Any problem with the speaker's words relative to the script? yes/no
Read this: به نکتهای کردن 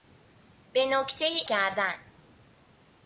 no